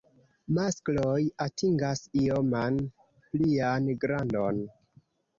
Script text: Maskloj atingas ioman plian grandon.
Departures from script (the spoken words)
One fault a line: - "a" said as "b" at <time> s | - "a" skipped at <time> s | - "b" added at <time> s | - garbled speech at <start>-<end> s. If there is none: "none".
none